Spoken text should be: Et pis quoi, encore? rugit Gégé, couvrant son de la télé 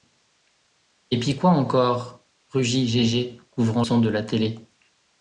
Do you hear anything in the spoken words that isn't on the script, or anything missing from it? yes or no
no